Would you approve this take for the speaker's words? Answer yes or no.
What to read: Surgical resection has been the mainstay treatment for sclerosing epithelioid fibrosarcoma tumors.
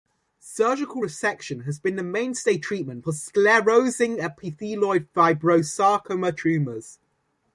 yes